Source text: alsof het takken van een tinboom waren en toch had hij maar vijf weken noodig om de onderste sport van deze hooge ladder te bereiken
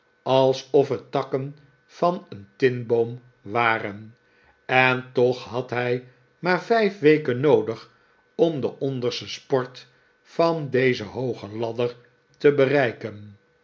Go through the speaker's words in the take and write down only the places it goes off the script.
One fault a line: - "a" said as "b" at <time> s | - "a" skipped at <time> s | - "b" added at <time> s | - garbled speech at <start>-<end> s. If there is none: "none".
none